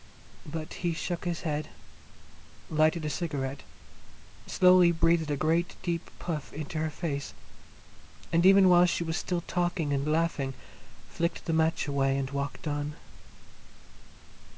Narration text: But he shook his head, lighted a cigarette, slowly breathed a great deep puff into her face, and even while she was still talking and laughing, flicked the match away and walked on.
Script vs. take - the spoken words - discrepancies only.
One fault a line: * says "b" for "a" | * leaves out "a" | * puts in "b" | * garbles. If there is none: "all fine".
all fine